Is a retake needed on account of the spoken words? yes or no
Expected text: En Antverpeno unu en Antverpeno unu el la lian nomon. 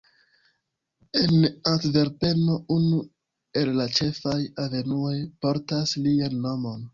yes